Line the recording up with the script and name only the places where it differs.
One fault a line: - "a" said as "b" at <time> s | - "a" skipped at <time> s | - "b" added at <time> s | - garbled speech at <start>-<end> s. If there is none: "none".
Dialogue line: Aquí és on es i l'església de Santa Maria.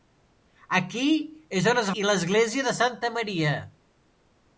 none